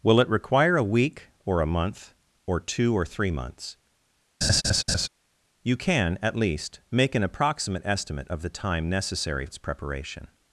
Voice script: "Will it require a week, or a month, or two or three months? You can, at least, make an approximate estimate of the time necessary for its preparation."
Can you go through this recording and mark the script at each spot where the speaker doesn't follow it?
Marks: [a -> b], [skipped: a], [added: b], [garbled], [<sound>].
"Will it require a week, or a month, or two or three months? [laugh] You can, at least, make an approximate estimate of the time necessary [skipped: for] its preparation."